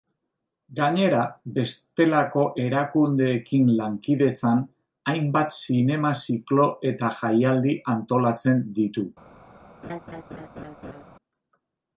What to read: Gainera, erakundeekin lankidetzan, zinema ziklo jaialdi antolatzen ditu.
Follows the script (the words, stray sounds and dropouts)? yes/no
no